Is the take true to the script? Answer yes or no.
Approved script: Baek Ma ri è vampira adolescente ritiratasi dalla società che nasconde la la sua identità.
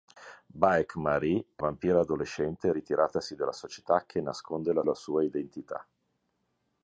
yes